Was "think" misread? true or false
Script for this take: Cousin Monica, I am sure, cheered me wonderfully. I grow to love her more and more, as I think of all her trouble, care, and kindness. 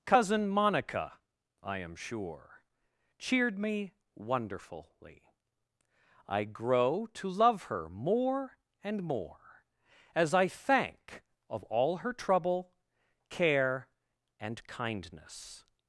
true